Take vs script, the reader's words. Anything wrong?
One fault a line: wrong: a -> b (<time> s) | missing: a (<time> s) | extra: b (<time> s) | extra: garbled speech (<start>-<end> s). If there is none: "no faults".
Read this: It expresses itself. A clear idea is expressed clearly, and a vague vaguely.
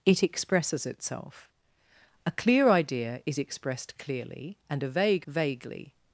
no faults